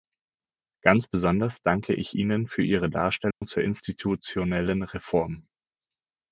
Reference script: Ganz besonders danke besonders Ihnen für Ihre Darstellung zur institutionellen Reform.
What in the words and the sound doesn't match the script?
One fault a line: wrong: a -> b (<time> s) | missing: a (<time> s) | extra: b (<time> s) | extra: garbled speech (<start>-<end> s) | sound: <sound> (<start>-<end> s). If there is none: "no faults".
wrong: besonders -> ich (1.9 s)
sound: dropout (3.3-3.4 s)